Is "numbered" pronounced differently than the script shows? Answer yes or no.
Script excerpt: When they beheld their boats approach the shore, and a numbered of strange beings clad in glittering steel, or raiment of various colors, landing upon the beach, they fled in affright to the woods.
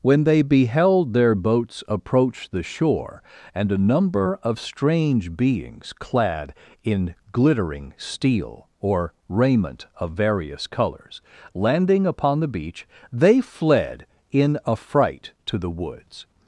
yes